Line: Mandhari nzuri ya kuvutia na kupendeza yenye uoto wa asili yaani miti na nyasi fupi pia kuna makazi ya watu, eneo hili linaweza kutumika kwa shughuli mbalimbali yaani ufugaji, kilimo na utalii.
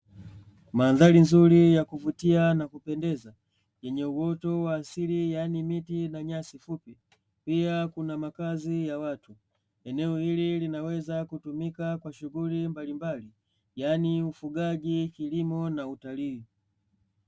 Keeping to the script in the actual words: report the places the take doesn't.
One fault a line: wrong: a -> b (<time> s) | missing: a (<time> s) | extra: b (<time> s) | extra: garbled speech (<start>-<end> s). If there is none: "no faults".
no faults